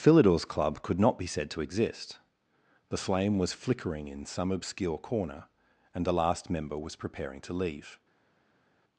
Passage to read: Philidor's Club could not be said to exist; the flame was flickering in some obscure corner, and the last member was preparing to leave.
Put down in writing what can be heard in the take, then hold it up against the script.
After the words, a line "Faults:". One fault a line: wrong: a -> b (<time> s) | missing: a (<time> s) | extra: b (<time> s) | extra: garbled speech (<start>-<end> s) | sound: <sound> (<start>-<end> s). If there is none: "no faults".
Philidor's Club could not be said to exist; the flame was flickering in some obscure corner, and the last member was preparing to leave.
Faults:
no faults